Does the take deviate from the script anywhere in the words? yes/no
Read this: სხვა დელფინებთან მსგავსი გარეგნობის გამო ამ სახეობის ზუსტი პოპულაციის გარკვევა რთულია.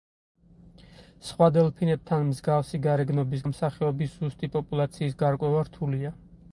yes